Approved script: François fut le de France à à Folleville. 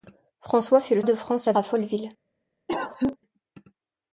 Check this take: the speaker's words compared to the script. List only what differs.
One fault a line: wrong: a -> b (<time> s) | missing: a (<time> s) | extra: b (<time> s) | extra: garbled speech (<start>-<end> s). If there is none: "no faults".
no faults